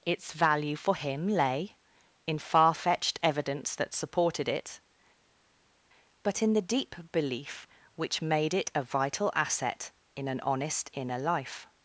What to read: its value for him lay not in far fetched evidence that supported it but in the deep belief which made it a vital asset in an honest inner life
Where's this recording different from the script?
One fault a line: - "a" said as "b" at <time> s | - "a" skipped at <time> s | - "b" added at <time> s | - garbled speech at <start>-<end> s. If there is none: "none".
- "not" skipped at 1.8 s